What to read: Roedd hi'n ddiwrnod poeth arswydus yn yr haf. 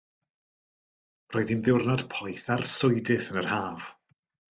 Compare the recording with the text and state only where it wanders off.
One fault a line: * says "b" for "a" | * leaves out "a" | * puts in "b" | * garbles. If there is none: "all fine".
all fine